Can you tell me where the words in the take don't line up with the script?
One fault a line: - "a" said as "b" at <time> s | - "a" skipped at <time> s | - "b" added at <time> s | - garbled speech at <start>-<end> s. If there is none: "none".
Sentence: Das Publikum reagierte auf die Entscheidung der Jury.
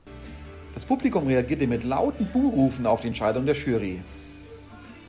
- "mit lauten Buhrufen" added at 1.7 s